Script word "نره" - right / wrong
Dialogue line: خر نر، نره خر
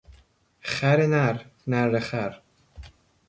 right